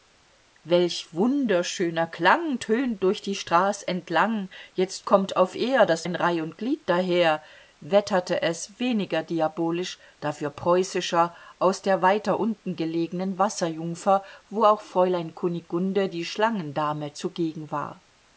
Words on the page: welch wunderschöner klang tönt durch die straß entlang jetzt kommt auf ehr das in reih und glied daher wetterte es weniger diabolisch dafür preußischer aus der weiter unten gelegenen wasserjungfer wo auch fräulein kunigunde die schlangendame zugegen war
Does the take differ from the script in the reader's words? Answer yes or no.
no